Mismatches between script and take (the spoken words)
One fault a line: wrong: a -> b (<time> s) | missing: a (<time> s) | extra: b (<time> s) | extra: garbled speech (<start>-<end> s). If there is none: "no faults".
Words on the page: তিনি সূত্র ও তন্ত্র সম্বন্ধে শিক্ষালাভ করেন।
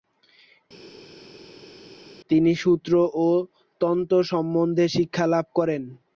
no faults